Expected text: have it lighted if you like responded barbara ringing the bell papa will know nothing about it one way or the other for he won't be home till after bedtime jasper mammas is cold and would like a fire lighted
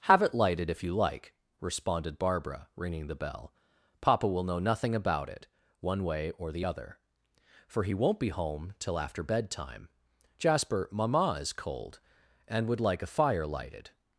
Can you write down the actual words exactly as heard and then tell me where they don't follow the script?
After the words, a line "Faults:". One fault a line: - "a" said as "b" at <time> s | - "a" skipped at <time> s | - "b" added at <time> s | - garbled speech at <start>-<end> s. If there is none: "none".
have it lighted if you like responded barbara ringing the bell papa will know nothing about it one way or the other for he won't be home till after bedtime jasper mamma is cold and would like a fire lighted
Faults:
- "mammas" said as "mamma" at 10.9 s